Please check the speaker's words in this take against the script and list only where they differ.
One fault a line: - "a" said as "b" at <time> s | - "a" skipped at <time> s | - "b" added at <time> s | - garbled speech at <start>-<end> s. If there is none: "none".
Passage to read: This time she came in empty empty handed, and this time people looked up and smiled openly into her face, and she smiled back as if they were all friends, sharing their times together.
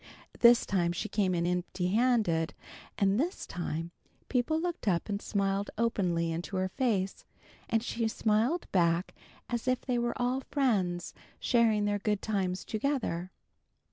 - "empty" skipped at 1.9 s
- "good" added at 12.0 s